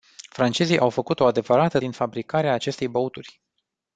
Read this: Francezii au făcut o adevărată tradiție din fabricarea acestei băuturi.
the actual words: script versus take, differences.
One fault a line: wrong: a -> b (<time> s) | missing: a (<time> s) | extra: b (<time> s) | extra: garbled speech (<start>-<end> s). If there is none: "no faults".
missing: tradiție (1.8 s)